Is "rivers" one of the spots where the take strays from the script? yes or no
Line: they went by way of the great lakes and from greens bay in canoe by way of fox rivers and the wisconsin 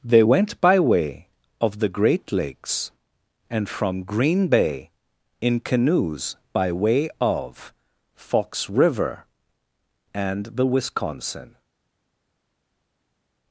yes